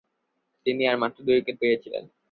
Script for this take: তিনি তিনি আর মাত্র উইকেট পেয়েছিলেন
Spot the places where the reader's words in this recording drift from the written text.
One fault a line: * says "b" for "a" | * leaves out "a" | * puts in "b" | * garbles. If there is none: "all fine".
* leaves out "তিনি"
* puts in "দুই"